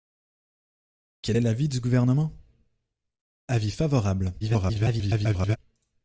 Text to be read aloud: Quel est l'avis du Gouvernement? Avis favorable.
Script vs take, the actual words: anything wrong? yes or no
yes